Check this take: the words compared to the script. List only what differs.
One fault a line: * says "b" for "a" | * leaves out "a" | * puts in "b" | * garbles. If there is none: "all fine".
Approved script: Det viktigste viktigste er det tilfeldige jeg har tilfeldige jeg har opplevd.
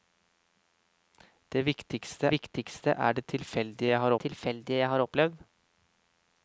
all fine